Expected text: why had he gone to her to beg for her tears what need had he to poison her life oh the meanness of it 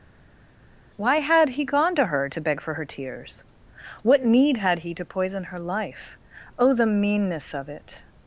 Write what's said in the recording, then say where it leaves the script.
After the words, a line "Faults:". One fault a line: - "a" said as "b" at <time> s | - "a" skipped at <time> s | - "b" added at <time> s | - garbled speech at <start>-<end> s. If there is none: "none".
why had he gone to her to beg for her tears what need had he to poison her life oh the meanness of it
Faults:
none